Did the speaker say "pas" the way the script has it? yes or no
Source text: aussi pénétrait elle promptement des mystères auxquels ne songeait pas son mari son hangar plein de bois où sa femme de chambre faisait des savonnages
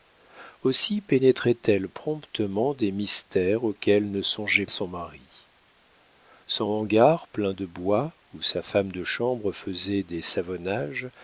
no